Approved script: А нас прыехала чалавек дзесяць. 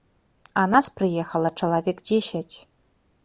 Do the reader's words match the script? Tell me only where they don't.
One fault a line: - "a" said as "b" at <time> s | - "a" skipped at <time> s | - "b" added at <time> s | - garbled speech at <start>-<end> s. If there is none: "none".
none